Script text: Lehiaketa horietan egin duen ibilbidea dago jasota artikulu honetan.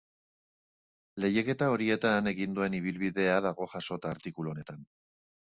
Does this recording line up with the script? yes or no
yes